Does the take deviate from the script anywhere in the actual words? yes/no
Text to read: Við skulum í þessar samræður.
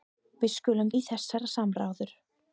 no